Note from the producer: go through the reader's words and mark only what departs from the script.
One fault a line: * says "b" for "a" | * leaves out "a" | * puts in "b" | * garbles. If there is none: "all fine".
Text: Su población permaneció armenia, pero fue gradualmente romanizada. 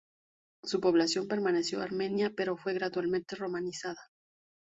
all fine